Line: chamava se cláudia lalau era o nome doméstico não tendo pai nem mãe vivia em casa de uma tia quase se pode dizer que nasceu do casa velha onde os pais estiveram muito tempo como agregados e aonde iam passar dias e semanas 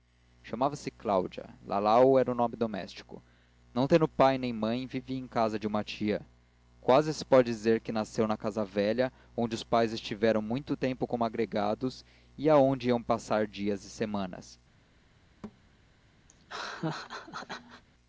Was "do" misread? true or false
true